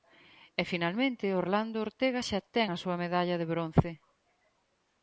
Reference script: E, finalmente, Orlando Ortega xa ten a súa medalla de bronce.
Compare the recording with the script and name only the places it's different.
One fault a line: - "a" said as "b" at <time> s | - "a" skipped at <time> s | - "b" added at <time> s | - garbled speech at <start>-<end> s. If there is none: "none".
none